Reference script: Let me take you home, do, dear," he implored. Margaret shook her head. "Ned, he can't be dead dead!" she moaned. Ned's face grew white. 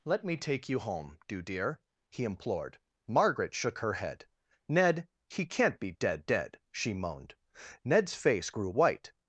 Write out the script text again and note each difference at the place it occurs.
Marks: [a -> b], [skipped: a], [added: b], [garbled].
Let me take you home, do, dear," he implored. Margaret shook her head. "Ned, he can't be dead dead!" she moaned. Ned's face grew white.